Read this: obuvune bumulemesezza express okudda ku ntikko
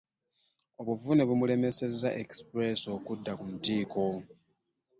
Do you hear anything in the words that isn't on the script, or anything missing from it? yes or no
no